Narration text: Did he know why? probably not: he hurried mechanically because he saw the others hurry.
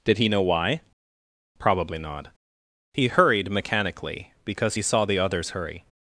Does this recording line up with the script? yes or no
yes